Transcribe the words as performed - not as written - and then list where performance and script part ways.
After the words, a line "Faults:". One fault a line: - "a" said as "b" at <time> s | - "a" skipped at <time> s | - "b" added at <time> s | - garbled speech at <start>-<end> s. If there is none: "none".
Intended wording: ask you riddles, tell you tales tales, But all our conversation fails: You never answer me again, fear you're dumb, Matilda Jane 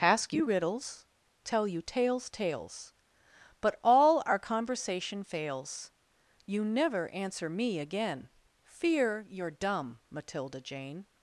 ask you riddles, tell you tales tales, But all our conversation fails: You never answer me again, fear you're dumb, Matilda Jane
Faults:
none